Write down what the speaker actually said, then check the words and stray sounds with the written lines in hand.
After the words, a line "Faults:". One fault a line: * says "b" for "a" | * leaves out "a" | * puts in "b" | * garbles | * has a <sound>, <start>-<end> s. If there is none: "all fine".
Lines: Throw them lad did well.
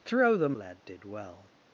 Throw them lad did well.
Faults:
all fine